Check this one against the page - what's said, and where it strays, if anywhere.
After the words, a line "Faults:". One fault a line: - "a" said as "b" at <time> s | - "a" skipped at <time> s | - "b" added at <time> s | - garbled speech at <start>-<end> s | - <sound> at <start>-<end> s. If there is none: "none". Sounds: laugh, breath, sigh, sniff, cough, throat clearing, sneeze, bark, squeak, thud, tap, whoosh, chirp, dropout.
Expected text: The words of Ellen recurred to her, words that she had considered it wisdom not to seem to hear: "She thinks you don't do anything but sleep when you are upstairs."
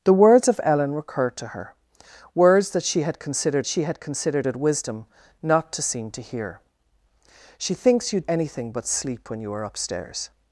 The words of Ellen recurred to her, words that she had considered she had considered it wisdom not to seem to hear: "She thinks you anything but sleep when you are upstairs."
Faults:
- "she had considered" added at 3.6 s
- "don't do" skipped at 8.2 s